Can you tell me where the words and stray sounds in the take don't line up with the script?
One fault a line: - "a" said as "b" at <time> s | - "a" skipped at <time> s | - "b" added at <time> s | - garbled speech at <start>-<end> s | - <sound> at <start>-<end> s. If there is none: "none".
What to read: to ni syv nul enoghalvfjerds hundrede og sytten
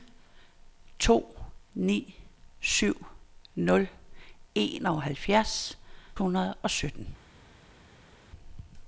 none